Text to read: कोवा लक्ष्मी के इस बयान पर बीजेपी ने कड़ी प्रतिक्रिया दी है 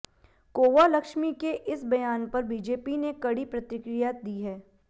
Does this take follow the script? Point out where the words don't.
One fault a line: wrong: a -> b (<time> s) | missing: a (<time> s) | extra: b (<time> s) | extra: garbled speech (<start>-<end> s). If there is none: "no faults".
no faults